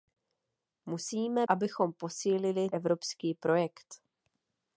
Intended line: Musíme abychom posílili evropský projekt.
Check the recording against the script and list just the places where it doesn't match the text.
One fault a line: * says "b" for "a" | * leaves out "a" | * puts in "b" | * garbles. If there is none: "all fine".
all fine